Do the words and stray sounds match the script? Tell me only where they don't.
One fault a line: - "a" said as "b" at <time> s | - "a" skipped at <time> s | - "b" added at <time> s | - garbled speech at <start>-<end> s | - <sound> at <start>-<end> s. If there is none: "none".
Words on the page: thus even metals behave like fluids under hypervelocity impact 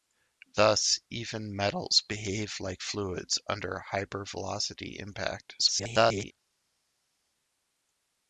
- garbled speech at 5.6-6.3 s